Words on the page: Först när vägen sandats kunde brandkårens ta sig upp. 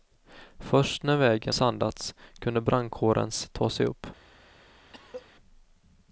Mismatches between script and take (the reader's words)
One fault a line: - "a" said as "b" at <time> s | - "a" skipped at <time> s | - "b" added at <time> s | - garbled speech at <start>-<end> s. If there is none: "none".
none